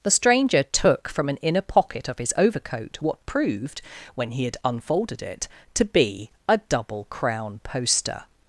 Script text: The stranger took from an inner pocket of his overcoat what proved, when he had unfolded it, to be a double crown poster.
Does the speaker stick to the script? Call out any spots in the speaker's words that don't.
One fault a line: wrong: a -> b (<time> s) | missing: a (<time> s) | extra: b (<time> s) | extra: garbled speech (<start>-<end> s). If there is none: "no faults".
no faults